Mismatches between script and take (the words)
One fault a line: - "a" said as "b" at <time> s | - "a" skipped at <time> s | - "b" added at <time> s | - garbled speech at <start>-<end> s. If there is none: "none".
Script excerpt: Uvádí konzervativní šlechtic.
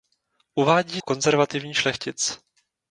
none